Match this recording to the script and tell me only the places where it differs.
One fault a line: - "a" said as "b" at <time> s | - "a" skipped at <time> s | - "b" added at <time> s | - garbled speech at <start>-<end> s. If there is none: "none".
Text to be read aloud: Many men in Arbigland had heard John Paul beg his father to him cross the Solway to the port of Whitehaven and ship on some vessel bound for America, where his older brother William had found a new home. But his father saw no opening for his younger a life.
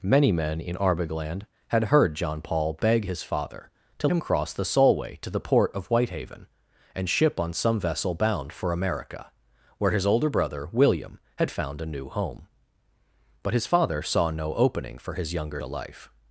none